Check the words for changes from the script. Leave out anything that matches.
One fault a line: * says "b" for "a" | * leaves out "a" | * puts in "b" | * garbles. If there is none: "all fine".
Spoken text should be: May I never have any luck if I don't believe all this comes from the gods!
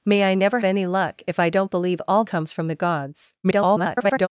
* leaves out "have"
* leaves out "this"
* garbles